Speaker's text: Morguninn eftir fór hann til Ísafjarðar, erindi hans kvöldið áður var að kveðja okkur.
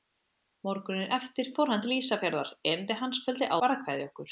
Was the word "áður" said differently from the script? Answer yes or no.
yes